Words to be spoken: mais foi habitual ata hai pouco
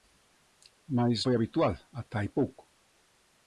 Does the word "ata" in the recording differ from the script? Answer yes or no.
no